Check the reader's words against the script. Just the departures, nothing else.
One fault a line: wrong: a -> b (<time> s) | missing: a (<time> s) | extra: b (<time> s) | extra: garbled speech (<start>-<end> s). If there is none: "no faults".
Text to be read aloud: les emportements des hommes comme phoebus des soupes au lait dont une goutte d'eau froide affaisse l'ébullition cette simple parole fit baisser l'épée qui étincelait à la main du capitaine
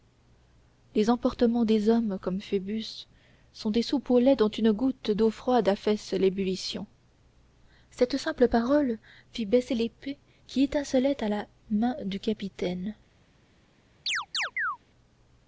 extra: sont (3.5 s)